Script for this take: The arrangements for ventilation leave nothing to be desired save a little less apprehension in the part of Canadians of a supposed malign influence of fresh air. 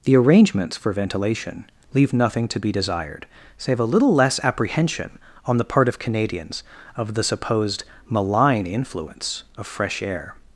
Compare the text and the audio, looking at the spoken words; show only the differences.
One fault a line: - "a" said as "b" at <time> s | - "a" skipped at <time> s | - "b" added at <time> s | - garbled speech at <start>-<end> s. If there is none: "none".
- "in" said as "on" at 5.5 s
- "a" said as "the" at 7.1 s